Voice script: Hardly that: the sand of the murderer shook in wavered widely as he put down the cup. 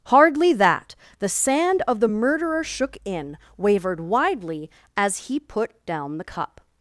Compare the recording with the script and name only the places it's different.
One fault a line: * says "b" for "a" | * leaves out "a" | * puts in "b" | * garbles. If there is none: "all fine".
all fine